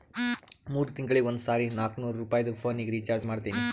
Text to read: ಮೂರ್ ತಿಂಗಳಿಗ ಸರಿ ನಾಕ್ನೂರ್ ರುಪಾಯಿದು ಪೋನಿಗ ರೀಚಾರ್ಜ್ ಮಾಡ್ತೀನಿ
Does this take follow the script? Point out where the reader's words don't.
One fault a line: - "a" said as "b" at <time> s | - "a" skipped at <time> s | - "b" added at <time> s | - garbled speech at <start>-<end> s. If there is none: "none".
- "ಒಂದ್" added at 1.2 s